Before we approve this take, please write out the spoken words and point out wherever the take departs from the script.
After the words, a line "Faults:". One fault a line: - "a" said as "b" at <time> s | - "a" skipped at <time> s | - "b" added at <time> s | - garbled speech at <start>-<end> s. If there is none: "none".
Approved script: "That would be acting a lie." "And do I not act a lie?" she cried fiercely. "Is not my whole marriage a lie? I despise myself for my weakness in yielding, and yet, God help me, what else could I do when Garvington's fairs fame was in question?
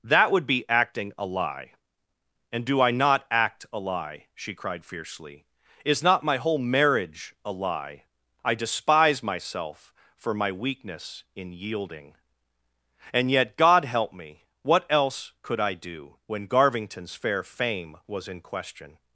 "That would be acting a lie." "And do I not act a lie?" she cried fiercely. "Is not my whole marriage a lie? I despise myself for my weakness in yielding, and yet, God help me, what else could I do when Garvington's fair fame was in question?
Faults:
- "fairs" said as "fair" at 17.1 s